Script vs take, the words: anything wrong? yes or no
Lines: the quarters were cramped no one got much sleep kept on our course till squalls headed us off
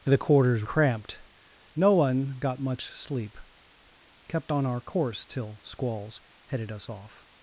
yes